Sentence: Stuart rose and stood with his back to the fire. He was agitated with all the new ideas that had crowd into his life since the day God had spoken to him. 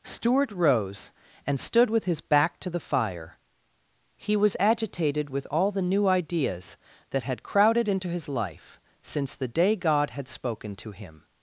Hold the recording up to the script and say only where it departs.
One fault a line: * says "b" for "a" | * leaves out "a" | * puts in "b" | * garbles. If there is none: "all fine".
* says "crowded" for "crowd"